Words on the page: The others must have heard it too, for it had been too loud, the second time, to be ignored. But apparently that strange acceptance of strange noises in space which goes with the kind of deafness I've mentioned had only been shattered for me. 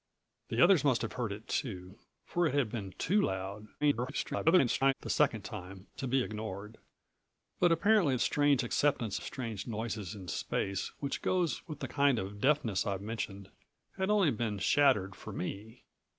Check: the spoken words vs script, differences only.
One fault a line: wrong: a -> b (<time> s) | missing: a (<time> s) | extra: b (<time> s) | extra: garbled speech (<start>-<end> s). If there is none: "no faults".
extra: garbled speech (3.8-4.9 s)
missing: that (8.2 s)
missing: of (9.2 s)